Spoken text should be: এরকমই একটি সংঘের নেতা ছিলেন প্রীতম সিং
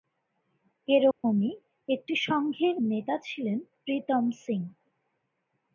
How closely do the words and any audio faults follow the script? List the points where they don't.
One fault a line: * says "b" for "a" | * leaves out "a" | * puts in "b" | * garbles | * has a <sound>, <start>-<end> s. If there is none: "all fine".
* has a dropout, 1.1-1.2 s